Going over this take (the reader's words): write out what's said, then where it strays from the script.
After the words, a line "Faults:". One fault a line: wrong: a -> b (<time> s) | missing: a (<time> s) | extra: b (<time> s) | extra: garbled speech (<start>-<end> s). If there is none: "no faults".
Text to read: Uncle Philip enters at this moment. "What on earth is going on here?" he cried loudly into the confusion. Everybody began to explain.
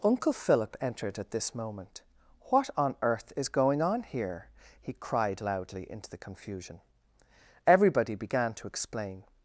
Uncle Philip entered at this moment. "What on earth is going on here?" he cried loudly into the confusion. Everybody began to explain.
Faults:
wrong: enters -> entered (0.8 s)